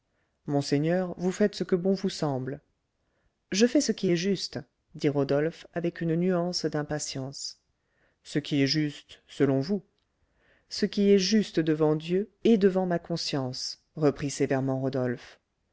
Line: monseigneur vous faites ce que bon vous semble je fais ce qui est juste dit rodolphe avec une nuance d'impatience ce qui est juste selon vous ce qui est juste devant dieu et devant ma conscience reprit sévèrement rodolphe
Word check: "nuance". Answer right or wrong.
right